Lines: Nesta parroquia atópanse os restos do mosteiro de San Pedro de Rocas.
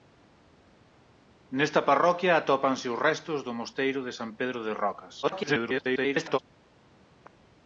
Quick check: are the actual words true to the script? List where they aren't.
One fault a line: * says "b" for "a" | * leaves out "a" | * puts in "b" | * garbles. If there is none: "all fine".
* garbles